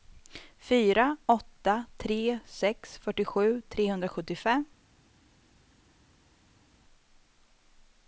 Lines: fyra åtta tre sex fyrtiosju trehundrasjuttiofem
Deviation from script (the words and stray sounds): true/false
false